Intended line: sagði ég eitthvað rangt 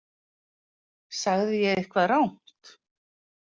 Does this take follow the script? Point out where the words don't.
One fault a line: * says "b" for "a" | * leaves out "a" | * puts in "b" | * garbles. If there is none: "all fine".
all fine